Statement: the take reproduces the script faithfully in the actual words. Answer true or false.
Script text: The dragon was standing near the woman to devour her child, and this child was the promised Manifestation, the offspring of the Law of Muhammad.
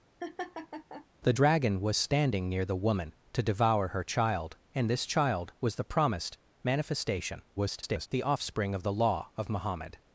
false